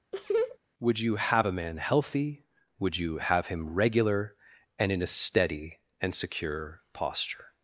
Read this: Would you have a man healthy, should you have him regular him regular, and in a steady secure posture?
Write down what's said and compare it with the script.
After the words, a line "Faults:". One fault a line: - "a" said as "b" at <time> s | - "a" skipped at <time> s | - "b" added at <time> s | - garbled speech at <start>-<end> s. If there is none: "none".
Would you have a man healthy, would you have him regular, and in a steady and secure posture?
Faults:
- "should" said as "would" at 2.8 s
- "him regular" skipped at 4.3 s
- "and" added at 6.0 s